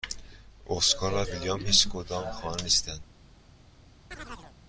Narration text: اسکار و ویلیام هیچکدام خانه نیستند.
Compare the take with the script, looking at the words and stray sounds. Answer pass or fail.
fail